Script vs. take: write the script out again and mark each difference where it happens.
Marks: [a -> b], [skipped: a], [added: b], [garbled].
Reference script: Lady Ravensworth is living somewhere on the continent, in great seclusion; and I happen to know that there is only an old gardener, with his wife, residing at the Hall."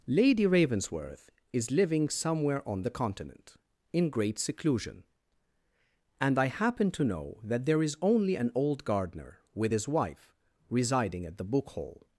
Lady Ravensworth is living somewhere on the continent, in great seclusion; and I happen to know that there is only an old gardener, with his wife, residing at the [added: book] Hall."